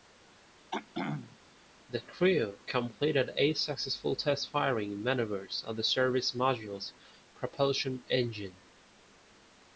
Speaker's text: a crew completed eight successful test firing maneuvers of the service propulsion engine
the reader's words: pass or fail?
fail